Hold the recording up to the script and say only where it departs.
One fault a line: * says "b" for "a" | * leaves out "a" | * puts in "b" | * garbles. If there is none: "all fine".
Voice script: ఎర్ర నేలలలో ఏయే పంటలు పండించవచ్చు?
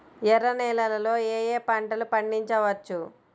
all fine